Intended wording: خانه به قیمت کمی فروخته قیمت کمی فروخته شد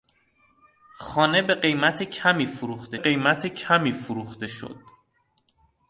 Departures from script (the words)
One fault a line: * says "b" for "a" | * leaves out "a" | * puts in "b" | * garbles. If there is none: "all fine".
all fine